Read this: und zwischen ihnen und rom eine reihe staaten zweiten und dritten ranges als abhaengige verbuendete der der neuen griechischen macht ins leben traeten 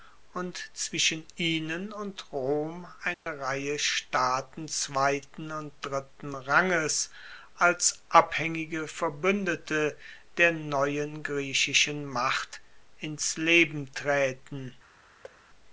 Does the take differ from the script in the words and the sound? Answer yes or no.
yes